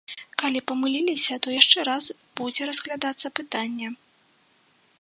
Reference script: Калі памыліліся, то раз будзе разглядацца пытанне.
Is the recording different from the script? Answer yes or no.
yes